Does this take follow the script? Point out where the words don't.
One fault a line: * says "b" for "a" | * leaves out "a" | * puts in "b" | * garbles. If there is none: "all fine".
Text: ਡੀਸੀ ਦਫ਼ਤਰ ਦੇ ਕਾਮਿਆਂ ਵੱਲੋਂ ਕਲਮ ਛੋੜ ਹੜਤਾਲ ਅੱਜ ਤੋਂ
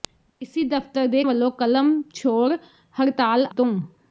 * leaves out "ਕਾਮਿਆਂ"
* leaves out "ਅੱਜ"